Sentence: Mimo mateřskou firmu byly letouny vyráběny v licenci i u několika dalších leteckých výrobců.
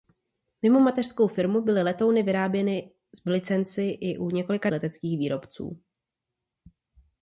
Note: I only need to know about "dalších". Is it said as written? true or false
false